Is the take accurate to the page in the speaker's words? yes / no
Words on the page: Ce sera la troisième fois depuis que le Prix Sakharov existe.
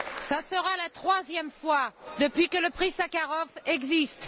yes